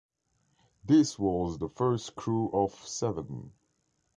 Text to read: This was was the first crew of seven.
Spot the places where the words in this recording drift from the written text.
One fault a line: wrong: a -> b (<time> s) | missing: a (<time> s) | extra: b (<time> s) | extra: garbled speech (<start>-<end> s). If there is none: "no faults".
missing: was (1.6 s)